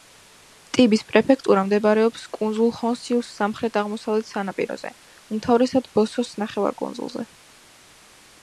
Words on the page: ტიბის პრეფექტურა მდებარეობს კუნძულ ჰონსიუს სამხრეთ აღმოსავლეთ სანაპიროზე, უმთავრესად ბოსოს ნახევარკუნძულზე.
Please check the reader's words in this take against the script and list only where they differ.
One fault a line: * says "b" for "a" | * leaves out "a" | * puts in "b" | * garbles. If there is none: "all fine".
all fine